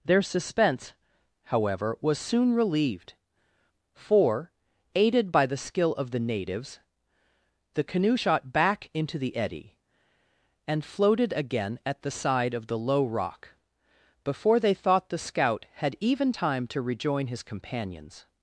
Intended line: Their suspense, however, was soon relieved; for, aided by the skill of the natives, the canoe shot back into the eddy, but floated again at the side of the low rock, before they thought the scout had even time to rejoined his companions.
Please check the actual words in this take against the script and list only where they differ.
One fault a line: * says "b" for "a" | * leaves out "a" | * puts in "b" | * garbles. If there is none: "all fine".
* says "and" for "but"
* says "rejoin" for "rejoined"